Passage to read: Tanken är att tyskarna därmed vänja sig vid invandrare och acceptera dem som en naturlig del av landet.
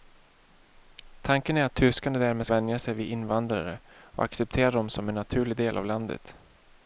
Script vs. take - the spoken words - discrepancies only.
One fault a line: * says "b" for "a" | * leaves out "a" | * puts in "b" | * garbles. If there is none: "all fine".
all fine